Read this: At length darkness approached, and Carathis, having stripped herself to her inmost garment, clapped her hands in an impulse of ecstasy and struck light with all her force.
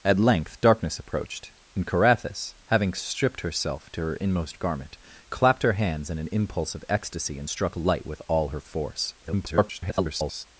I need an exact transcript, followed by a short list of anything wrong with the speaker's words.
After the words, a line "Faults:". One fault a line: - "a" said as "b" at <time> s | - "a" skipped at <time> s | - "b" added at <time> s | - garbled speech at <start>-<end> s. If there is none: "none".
At length darkness approached, and Carathis, having stripped herself to her inmost garment, clapped her hands in an impulse of ecstasy and struck light with all her force. [garbled]
Faults:
- garbled speech at 9.2-10.5 s